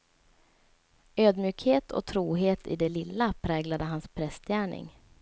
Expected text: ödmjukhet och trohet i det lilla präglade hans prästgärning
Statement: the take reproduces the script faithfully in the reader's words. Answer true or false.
true